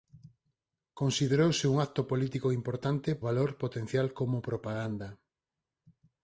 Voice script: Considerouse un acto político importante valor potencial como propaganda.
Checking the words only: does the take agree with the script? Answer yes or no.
yes